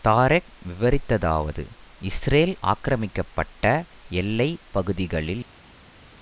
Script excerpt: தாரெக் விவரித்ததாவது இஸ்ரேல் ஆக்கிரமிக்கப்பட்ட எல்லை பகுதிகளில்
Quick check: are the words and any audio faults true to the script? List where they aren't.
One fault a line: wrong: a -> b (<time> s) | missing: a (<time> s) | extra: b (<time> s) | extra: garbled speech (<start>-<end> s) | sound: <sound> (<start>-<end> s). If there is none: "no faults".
no faults